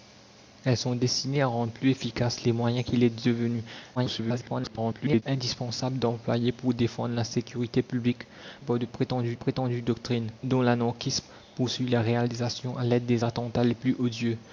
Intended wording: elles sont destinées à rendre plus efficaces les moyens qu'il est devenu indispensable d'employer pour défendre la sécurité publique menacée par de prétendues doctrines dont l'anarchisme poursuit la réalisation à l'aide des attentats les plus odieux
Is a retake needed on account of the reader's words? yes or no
yes